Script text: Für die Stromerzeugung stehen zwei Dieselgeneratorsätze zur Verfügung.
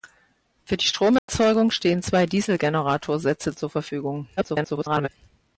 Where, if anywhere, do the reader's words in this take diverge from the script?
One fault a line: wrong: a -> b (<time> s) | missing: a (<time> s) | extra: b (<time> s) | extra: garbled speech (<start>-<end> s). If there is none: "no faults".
extra: garbled speech (4.4-5.1 s)